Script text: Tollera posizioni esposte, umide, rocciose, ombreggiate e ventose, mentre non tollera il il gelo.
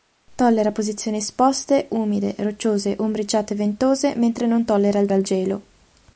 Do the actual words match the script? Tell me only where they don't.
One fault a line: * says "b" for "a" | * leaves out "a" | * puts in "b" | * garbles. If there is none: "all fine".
all fine